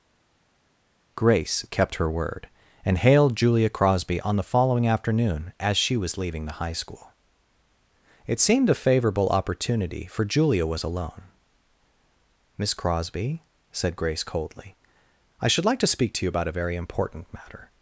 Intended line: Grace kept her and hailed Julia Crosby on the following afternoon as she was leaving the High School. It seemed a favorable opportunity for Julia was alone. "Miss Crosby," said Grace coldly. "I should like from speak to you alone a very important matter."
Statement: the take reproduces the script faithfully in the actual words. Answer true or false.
false